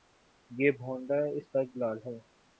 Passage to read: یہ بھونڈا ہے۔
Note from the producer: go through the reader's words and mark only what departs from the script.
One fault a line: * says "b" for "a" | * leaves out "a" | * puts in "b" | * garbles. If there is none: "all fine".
* puts in "استدلال"